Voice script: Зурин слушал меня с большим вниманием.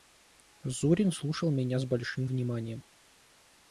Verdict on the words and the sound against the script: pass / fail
pass